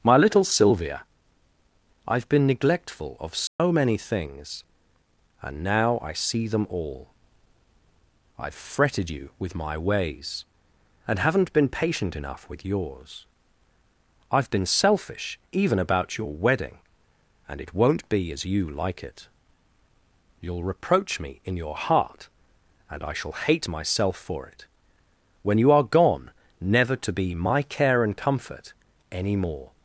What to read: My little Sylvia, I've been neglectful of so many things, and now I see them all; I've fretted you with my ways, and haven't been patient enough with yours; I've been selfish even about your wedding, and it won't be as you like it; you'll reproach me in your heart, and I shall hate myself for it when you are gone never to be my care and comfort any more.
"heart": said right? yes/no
yes